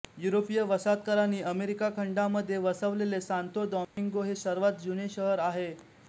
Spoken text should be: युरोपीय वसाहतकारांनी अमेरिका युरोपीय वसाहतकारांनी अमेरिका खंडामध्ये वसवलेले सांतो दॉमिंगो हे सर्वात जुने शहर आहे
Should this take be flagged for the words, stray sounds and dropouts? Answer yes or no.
yes